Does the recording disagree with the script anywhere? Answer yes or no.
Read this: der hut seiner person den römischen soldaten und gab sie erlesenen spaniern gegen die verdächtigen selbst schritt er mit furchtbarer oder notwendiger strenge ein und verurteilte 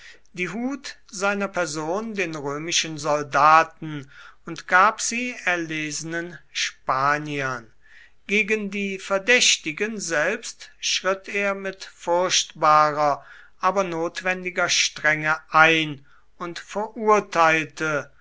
yes